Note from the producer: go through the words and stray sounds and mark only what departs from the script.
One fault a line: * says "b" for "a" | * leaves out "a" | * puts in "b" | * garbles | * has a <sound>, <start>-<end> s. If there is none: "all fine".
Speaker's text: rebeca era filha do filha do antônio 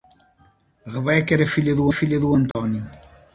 * has a dropout, 2.5-2.6 s